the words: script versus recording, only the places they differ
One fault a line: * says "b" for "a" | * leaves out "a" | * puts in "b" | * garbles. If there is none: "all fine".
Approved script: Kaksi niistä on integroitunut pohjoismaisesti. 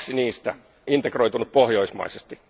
* leaves out "on"